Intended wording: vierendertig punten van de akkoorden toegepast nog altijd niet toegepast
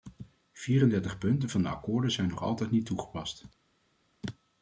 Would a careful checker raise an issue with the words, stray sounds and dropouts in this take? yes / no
yes